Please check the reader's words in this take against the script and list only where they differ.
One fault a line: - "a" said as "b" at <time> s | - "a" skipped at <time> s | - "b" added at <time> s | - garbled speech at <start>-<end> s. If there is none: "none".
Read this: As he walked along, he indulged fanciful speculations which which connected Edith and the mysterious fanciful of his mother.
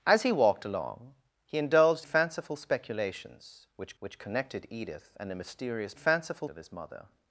none